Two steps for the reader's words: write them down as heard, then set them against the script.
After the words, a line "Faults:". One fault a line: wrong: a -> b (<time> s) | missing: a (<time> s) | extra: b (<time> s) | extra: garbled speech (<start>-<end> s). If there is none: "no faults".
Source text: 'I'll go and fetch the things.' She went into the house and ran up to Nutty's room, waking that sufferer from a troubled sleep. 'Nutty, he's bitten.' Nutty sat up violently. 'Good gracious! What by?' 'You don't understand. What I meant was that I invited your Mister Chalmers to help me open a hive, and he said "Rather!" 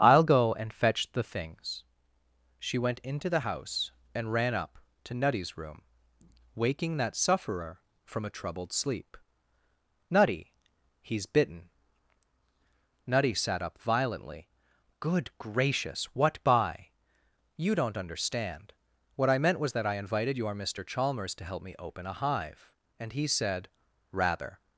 'I'll go and fetch the things.' She went into the house and ran up to Nutty's room, waking that sufferer from a troubled sleep. 'Nutty, he's bitten.' Nutty sat up violently. 'Good gracious! What by?' 'You don't understand. What I meant was that I invited your Mister Chalmers to help me open a hive, and he said "Rather!"
Faults:
no faults